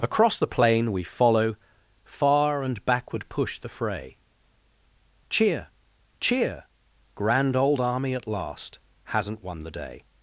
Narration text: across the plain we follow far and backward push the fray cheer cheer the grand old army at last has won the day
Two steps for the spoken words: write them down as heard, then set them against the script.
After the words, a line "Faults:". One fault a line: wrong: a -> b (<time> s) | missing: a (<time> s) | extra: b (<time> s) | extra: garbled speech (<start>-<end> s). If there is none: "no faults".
across the plain we follow far and backward push the fray cheer cheer grand old army at last hasn't won the day
Faults:
missing: the (6.6 s)
wrong: has -> hasn't (9.0 s)